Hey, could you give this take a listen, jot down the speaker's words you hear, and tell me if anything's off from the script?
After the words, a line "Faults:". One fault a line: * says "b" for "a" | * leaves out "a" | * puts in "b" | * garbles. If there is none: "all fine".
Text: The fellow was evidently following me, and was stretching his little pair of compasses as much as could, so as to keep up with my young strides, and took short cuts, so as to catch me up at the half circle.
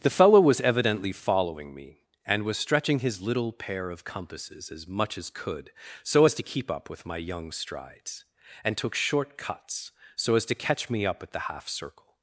The fellow was evidently following me, and was stretching his little pair of compasses as much as could, so as to keep up with my young strides, and took short cuts, so as to catch me up at the half circle.
Faults:
all fine